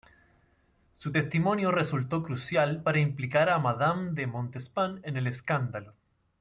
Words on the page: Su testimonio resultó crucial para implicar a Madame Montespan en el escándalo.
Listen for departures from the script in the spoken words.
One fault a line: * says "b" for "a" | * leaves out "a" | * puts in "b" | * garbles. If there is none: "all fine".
* puts in "de"